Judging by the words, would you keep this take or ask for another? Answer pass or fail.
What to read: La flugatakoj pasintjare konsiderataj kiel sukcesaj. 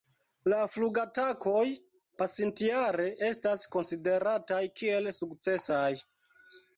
fail